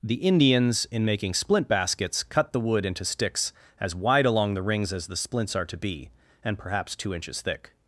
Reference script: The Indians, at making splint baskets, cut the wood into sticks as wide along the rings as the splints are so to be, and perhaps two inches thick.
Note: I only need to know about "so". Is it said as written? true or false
false